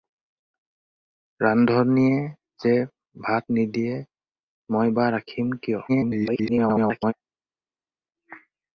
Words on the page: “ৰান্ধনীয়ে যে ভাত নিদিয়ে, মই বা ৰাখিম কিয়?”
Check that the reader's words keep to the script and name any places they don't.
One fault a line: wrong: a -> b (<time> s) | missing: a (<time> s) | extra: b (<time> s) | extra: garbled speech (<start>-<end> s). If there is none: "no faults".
extra: garbled speech (5.9-7.1 s)